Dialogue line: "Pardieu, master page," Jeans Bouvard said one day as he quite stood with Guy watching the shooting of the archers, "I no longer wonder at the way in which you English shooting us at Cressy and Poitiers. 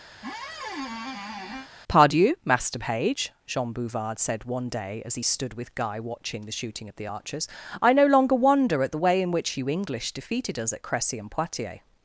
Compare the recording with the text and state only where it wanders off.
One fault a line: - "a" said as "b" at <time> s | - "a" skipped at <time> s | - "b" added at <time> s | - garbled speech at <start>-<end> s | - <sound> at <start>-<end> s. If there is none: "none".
- squeak at 0.1-1.7 s
- "Jeans" said as "Jean" at 3.5 s
- "quite" skipped at 5.2 s
- "shooting" said as "defeated" at 10.1 s